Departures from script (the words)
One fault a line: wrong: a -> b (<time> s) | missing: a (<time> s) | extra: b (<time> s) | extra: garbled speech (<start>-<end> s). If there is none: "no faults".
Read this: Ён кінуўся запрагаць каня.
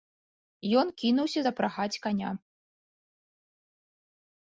no faults